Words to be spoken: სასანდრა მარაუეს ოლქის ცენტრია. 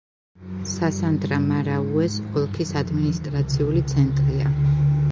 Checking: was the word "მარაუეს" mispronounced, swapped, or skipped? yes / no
no